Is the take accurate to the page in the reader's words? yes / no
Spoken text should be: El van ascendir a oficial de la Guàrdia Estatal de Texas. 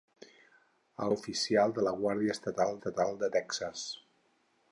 no